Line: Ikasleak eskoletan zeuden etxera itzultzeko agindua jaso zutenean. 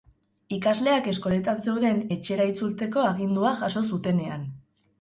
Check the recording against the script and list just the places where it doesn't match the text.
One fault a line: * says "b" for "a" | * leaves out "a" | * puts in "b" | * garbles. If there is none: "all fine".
all fine